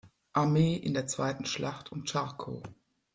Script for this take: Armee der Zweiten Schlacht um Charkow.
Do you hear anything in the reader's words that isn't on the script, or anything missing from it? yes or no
yes